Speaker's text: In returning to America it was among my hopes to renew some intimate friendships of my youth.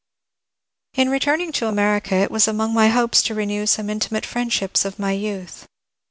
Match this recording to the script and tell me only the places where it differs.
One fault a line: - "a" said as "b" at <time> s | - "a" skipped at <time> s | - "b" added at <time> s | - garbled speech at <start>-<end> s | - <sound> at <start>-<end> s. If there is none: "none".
none